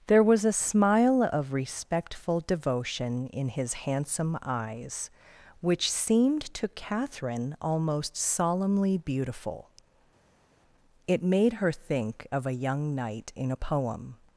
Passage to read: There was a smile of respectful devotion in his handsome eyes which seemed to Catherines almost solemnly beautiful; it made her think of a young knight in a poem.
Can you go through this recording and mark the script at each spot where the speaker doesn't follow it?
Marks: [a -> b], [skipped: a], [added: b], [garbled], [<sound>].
There was a smile of respectful devotion in his handsome eyes which seemed to [Catherines -> Catherine] almost solemnly beautiful; it made her think of a young knight in a poem.